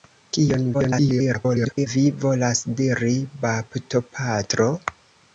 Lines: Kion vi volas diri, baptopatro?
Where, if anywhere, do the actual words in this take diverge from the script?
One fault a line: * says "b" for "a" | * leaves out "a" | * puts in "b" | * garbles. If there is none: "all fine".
* garbles